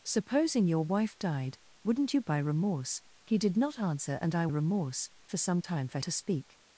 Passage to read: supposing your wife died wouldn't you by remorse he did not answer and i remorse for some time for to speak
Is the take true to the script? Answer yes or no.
yes